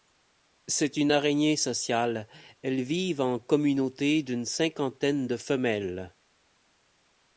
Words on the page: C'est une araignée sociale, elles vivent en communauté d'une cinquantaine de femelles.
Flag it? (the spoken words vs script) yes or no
no